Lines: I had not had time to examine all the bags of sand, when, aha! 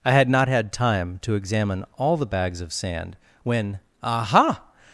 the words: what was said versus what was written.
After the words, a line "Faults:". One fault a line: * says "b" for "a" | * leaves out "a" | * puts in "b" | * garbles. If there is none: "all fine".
I had not had time to examine all the bags of sand, when, aha!
Faults:
all fine